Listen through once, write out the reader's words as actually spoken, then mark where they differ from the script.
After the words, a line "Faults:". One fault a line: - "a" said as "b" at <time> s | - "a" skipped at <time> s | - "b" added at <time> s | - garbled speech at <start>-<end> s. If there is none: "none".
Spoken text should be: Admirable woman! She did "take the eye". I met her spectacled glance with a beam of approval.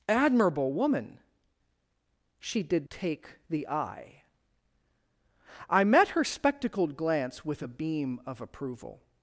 Admirable woman! She did "take the eye". I met her spectacled glance with a beam of approval.
Faults:
none